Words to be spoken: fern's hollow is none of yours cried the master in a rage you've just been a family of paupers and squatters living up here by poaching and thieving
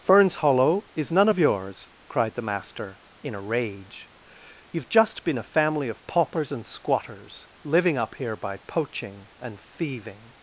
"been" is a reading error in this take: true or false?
false